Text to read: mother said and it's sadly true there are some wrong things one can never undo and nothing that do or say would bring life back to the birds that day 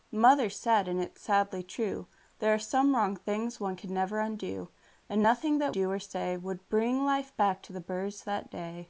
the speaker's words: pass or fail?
pass